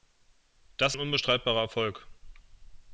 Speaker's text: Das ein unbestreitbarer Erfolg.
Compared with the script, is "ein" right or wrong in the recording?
right